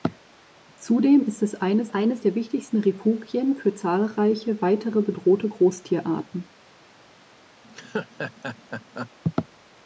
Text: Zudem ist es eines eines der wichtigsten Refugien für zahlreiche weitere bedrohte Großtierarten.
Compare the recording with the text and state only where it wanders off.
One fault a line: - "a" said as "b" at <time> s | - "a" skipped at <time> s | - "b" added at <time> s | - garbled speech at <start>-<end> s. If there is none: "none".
none